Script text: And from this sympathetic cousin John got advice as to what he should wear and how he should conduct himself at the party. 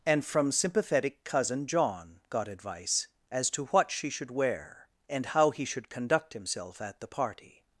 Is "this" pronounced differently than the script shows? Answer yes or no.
yes